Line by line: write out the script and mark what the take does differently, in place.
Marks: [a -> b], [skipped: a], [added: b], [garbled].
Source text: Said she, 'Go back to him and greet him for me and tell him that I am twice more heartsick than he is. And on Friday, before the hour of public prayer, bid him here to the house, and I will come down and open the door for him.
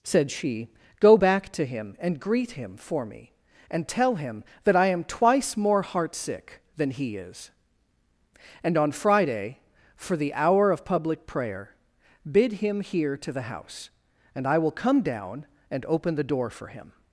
Said she, 'Go back to him and greet him for me and tell him that I am twice more heartsick than he is. And on Friday, [before -> for] the hour of public prayer, bid him here to the house, and I will come down and open the door for him.